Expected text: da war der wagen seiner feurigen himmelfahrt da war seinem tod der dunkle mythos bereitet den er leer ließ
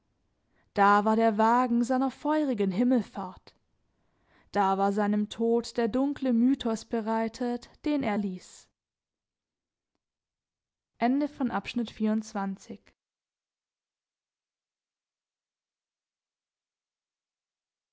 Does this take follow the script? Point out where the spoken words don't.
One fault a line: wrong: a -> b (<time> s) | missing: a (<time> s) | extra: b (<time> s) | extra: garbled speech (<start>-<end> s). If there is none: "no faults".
missing: leer (8.2 s)